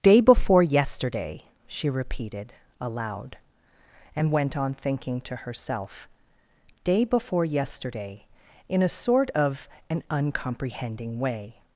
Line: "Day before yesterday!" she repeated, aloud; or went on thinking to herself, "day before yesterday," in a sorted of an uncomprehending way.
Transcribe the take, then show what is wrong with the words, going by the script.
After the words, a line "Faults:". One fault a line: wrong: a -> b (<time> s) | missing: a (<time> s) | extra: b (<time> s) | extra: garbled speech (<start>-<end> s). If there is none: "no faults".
"Day before yesterday!" she repeated, aloud; and went on thinking to herself, "day before yesterday," in a sort of an uncomprehending way.
Faults:
wrong: or -> and (4.2 s)
wrong: sorted -> sort (8.9 s)